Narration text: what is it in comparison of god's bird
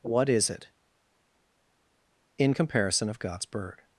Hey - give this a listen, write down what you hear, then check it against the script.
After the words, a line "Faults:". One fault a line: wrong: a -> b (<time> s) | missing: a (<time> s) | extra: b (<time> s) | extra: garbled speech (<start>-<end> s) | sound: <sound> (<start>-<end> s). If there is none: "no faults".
what is it in comparison of god's bird
Faults:
no faults